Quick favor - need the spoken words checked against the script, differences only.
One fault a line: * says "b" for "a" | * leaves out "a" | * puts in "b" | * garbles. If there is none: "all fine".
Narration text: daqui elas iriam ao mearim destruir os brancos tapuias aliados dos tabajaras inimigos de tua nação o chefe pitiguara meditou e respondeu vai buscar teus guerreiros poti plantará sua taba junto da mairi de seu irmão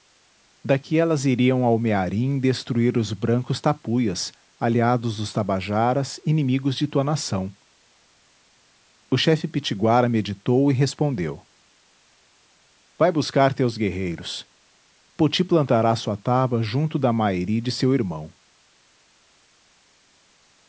all fine